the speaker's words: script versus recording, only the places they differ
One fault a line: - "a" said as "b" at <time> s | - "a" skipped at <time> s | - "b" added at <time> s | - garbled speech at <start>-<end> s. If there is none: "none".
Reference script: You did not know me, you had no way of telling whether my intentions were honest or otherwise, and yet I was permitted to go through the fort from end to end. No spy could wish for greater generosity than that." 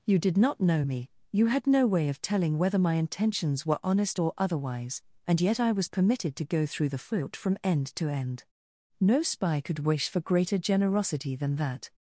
none